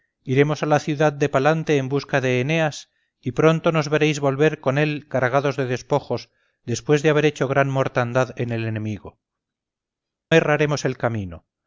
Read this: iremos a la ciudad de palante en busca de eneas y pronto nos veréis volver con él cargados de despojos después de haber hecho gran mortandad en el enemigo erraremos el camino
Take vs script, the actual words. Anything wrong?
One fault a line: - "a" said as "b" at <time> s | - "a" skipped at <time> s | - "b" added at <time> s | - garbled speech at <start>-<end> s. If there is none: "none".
none